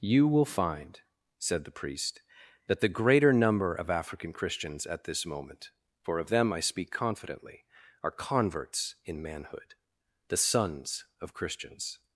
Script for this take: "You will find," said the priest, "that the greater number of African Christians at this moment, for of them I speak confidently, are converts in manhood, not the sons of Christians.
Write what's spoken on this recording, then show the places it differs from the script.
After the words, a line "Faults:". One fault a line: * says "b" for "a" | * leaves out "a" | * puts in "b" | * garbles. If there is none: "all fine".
"You will find," said the priest, "that the greater number of African Christians at this moment, for of them I speak confidently, are converts in manhood, the sons of Christians.
Faults:
* leaves out "not"